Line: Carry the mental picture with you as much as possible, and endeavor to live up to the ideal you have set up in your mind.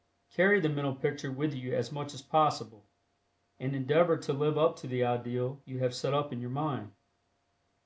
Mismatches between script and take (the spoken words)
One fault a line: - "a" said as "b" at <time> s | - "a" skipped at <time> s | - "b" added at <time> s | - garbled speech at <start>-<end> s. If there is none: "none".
none